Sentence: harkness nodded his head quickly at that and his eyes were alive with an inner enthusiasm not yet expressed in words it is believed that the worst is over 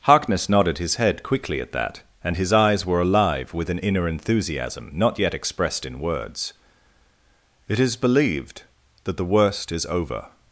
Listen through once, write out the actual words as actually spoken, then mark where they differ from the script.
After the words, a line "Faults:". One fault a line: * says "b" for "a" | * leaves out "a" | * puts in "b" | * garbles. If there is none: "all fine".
harkness nodded his head quickly at that and his eyes were alive with an inner enthusiasm not yet expressed in words it is believed that the worst is over
Faults:
all fine